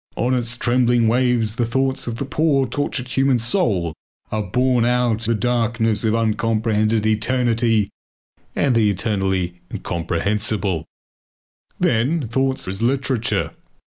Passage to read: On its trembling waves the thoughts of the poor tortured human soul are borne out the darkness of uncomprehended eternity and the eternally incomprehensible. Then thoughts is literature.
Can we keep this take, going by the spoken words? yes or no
yes